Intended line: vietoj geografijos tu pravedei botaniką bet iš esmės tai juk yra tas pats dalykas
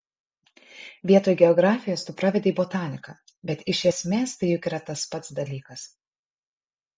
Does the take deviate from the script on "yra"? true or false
false